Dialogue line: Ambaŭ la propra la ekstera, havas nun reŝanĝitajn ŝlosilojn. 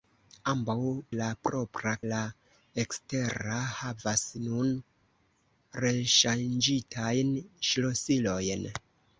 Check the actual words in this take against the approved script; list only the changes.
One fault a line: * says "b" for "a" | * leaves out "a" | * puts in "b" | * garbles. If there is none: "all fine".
all fine